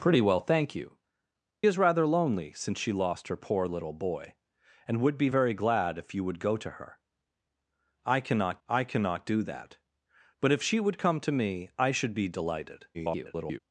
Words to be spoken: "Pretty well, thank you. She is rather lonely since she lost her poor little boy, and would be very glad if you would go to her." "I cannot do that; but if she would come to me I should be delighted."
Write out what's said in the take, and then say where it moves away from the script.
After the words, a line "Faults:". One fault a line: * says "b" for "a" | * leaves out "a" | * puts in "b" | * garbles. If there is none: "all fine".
"Pretty well, thank you. Is rather lonely since she lost her poor little boy, and would be very glad if you would go to her." "I cannot I cannot do that; but if she would come to me I should be delighted." [garbled]
Faults:
* leaves out "She"
* puts in "I cannot"
* garbles